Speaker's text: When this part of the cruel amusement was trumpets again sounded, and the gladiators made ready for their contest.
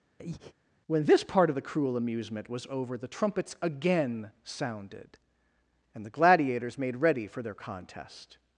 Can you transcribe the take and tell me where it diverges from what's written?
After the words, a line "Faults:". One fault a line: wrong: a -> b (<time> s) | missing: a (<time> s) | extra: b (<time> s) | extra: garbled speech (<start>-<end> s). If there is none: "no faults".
When this part of the cruel amusement was over the trumpets again sounded, and the gladiators made ready for their contest.
Faults:
extra: over the (2.7 s)